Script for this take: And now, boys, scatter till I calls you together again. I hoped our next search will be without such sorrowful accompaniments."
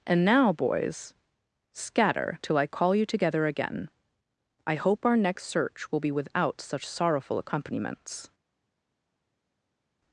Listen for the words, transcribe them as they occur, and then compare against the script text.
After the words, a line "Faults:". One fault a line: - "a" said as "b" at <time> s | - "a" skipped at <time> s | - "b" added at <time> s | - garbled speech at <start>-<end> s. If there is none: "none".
And now, boys, scatter till I call you together again. I hope our next search will be without such sorrowful accompaniments."
Faults:
- "calls" said as "call" at 2.7 s
- "hoped" said as "hope" at 4.8 s